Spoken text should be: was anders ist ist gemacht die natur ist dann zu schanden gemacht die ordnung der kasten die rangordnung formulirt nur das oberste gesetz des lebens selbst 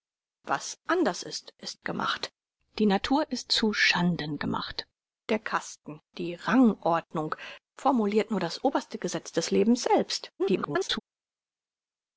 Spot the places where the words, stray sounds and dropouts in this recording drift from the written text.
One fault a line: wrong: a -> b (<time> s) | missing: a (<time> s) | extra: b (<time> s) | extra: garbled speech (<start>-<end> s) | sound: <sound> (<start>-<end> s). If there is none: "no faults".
missing: dann (3.5 s)
missing: die ordnung (4.9 s)
extra: garbled speech (10.4-11.0 s)